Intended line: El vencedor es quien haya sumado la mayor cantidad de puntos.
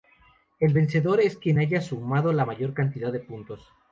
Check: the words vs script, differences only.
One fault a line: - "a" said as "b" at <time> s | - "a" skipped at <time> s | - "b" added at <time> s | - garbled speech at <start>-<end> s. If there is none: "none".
none